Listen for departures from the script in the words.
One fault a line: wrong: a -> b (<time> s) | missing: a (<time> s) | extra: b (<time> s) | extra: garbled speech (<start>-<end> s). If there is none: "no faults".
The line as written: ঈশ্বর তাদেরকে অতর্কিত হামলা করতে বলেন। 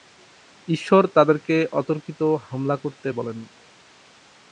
no faults